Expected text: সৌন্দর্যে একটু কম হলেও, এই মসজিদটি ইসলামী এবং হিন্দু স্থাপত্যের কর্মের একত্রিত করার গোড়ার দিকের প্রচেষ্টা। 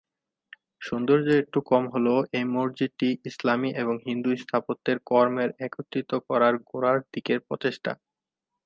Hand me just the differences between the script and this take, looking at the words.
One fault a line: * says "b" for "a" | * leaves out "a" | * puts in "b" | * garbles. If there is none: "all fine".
all fine